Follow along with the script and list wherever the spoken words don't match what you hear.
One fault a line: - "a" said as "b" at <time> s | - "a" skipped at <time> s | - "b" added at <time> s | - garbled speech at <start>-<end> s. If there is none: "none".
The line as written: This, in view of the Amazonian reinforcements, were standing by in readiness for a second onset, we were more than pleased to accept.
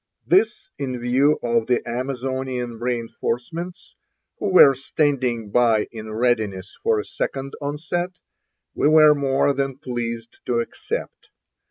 - "who" added at 4.4 s